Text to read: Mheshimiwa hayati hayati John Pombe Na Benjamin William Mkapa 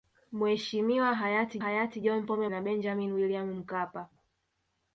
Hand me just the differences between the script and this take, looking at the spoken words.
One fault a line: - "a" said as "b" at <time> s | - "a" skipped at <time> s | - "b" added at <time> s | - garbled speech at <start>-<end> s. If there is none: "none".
none